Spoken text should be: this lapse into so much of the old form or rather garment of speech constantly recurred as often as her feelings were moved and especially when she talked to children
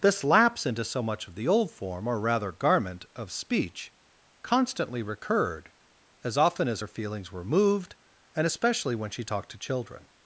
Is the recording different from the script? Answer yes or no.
no